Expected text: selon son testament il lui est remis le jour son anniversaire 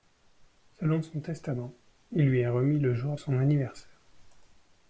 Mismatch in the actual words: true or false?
false